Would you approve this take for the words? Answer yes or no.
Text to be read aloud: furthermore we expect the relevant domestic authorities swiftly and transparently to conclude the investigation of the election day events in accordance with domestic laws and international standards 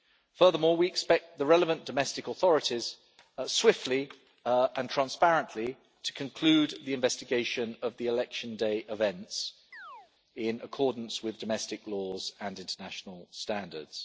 yes